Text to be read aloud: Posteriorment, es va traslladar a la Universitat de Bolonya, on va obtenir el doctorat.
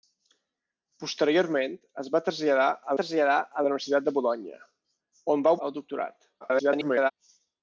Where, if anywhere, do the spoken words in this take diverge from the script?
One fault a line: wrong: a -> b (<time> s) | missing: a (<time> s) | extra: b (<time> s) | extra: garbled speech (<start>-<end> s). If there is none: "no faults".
extra: traslladar a (3.0 s)
missing: obtenir (5.6 s)
extra: garbled speech (6.4-7.1 s)